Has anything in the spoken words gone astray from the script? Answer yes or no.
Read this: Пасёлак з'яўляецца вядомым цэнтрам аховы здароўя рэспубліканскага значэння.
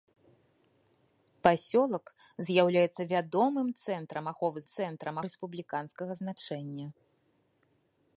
yes